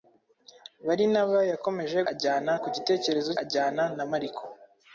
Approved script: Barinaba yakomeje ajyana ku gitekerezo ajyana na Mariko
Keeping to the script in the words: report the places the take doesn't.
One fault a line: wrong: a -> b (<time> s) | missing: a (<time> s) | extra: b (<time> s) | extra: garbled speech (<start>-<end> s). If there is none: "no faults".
no faults